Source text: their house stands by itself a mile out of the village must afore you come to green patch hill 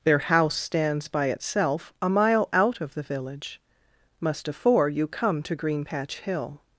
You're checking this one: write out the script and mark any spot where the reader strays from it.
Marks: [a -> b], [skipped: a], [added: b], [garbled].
their house stands by itself a mile out of the village must afore you come to green patch hill